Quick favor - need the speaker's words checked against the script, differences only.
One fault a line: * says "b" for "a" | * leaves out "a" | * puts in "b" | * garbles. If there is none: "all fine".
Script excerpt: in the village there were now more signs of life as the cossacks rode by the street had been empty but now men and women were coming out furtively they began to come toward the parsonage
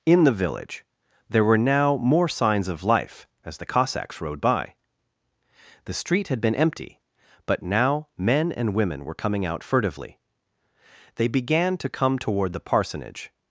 all fine